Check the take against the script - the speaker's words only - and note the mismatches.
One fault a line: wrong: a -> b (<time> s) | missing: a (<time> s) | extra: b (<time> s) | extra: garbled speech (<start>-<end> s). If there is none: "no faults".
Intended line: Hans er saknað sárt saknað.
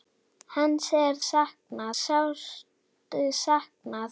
no faults